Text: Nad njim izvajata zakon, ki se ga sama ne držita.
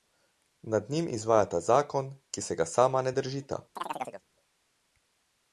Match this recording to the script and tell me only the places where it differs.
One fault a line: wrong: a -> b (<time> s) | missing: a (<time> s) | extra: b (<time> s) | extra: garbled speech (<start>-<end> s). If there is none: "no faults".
no faults